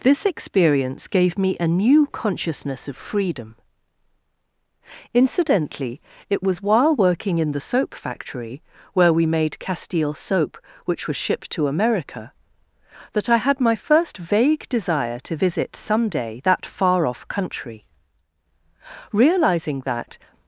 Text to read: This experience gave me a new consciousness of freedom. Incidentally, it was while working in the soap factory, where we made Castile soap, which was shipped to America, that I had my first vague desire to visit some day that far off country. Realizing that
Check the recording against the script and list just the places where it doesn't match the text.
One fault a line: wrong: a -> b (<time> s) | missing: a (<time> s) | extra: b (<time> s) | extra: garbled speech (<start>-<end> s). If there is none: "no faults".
no faults